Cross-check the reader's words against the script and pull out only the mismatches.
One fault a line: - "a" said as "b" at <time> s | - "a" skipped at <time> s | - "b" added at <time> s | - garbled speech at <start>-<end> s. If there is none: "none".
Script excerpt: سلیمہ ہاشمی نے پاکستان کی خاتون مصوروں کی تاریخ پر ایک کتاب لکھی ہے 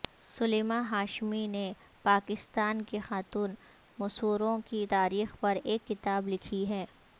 none